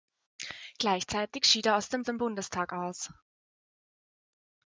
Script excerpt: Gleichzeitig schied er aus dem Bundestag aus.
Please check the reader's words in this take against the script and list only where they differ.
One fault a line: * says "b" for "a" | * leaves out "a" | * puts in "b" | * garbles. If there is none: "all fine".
* puts in "dem"